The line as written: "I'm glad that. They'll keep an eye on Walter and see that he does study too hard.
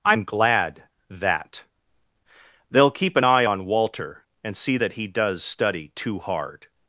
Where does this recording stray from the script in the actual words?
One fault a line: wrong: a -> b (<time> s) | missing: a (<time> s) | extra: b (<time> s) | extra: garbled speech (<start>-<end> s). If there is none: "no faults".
no faults